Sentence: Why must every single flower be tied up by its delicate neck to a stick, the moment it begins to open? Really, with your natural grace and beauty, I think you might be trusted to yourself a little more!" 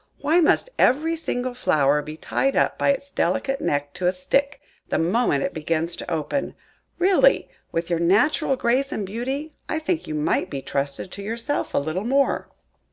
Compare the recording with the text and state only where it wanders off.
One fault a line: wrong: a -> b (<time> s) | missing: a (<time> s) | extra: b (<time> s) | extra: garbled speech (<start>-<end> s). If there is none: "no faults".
no faults